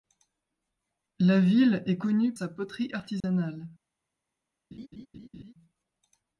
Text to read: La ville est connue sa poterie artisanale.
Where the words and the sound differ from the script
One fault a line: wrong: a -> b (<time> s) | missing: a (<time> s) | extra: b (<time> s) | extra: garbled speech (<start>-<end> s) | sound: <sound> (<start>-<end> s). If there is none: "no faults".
sound: dropout (3.2-3.2 s)
sound: laugh (4.7-5.5 s)